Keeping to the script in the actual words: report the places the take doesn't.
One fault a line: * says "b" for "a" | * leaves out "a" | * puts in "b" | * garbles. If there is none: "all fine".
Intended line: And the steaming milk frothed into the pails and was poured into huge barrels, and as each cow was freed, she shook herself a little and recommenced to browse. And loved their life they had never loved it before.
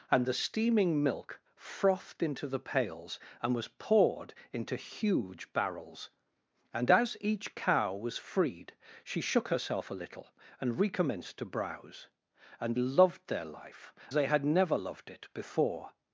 all fine